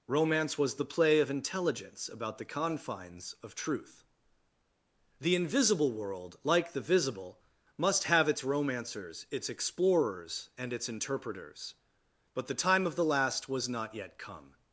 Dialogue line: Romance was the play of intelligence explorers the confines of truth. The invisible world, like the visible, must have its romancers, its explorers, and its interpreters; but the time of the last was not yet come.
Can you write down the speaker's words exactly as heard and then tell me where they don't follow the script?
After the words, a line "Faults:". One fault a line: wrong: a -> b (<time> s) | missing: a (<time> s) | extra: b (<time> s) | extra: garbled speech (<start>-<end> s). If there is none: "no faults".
Romance was the play of intelligence about the confines of truth. The invisible world, like the visible, must have its romancers, its explorers, and its interpreters; but the time of the last was not yet come.
Faults:
wrong: explorers -> about (2.1 s)